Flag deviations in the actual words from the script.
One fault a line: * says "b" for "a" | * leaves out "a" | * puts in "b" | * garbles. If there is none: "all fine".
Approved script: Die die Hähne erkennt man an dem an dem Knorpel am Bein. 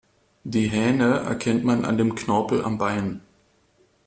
* leaves out "die"
* leaves out "an dem"